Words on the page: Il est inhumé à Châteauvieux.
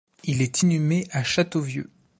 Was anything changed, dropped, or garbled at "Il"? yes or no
no